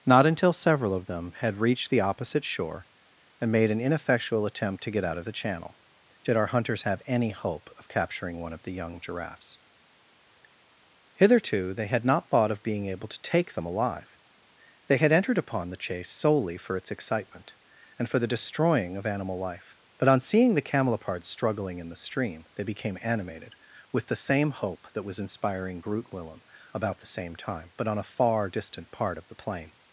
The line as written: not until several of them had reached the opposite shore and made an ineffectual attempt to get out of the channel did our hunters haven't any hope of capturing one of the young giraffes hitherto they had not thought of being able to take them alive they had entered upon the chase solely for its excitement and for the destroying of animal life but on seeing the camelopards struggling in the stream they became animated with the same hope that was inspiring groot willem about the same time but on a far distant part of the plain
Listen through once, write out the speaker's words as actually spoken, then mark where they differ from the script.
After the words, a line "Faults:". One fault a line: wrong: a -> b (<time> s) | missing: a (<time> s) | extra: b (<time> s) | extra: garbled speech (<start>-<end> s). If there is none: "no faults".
not until several of them had reached the opposite shore and made an ineffectual attempt to get out of the channel did our hunters have any hope of capturing one of the young giraffes hitherto they had not thought of being able to take them alive they had entered upon the chase solely for its excitement and for the destroying of animal life but on seeing the camelopards struggling in the stream they became animated with the same hope that was inspiring groot willem about the same time but on a far distant part of the plain
Faults:
wrong: haven't -> have (6.8 s)